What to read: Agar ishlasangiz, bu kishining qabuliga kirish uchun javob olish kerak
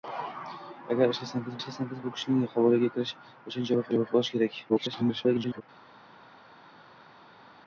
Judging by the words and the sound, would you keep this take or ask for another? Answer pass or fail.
fail